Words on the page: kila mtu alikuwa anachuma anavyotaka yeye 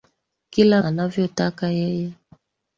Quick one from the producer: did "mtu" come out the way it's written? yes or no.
no